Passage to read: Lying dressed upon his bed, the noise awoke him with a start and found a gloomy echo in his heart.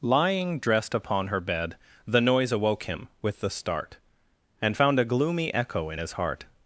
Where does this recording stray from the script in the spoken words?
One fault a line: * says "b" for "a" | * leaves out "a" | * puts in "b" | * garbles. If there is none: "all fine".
* says "her" for "his"
* says "the" for "a"